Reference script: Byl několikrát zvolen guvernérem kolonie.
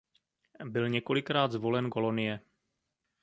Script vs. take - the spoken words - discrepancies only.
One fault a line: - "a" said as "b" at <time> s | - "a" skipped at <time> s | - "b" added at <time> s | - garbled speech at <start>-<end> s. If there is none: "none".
- "guvernérem" skipped at 1.9 s